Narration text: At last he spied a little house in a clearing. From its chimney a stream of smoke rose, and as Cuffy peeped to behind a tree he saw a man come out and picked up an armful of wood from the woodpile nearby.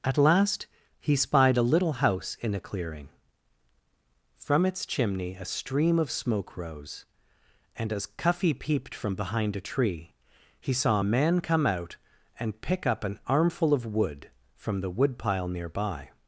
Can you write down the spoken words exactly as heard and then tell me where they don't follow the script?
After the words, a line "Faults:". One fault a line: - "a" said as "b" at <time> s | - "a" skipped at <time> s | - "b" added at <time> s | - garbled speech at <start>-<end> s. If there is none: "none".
At last he spied a little house in a clearing. From its chimney a stream of smoke rose, and as Cuffy peeped from behind a tree he saw a man come out and pick up an armful of wood from the woodpile nearby.
Faults:
- "to" said as "from" at 8.9 s
- "picked" said as "pick" at 12.6 s